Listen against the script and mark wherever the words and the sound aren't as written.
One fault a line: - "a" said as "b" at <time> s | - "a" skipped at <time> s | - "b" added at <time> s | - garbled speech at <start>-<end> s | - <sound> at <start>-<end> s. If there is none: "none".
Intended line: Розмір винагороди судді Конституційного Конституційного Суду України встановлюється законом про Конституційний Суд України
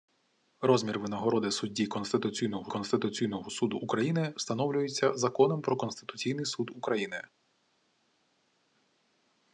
none